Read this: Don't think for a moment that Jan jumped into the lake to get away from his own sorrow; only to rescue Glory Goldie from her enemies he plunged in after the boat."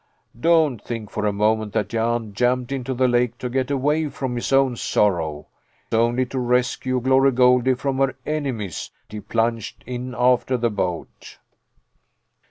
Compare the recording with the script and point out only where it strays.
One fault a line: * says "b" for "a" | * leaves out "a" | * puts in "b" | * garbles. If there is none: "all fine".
all fine